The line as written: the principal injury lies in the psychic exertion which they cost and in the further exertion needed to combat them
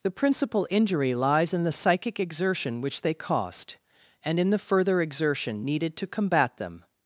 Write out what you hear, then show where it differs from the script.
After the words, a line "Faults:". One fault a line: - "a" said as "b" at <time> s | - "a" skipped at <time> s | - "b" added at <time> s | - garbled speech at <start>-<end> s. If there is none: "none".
the principal injury lies in the psychic exertion which they cost and in the further exertion needed to combat them
Faults:
none